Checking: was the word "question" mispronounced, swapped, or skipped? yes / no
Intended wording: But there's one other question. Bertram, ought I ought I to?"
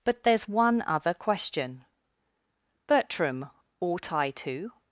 no